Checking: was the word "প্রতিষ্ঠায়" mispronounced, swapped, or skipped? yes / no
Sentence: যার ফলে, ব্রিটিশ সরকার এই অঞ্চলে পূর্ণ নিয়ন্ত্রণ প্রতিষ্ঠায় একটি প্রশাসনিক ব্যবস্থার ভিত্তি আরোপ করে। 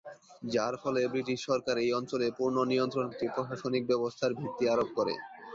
yes